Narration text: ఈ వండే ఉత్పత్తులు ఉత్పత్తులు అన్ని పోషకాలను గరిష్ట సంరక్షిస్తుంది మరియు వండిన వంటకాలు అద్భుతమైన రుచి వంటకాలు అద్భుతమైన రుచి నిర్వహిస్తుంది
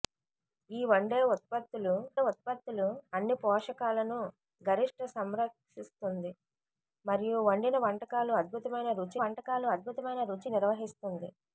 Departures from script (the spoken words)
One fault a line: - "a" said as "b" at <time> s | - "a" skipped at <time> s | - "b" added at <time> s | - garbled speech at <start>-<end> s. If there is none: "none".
none